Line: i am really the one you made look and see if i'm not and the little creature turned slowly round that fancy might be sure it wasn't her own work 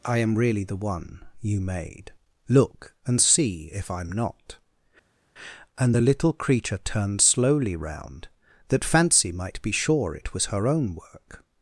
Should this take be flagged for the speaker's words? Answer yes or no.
yes